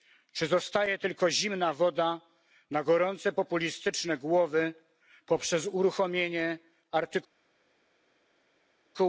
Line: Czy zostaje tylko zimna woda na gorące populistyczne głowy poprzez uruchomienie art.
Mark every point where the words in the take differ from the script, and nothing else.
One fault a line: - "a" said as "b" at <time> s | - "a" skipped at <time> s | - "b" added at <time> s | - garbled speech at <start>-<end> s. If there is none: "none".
none